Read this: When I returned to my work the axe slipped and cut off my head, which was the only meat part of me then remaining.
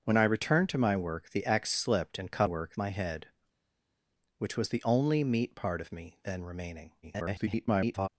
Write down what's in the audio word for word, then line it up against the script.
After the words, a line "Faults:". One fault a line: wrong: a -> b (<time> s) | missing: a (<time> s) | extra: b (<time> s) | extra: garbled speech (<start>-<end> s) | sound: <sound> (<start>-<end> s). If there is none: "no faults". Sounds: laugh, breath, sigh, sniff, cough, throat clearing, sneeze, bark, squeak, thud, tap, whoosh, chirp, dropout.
When I returned to my work the axe slipped and cut work my head, which was the only meat part of me then remaining. [garbled]
Faults:
wrong: off -> work (2.4 s)
extra: garbled speech (7.0-8.1 s)